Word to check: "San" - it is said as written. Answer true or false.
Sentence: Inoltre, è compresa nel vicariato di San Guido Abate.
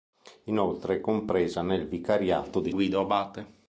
false